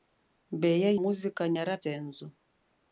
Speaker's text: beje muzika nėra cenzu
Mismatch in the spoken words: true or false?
false